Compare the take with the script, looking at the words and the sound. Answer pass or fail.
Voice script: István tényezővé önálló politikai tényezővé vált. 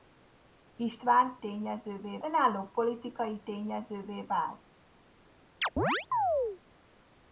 fail